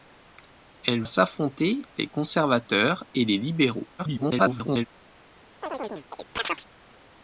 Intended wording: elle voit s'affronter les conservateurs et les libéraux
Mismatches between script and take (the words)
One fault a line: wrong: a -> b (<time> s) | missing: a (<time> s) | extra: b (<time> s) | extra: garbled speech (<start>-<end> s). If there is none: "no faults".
missing: voit (1.0 s)
extra: garbled speech (4.0-4.9 s)